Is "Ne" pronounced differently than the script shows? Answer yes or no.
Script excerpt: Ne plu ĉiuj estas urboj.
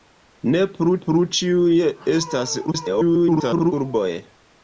no